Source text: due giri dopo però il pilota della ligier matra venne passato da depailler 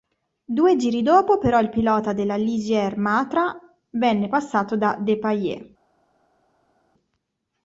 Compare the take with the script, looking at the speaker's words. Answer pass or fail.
pass